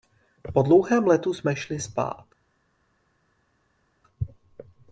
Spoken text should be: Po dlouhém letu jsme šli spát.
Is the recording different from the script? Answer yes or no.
no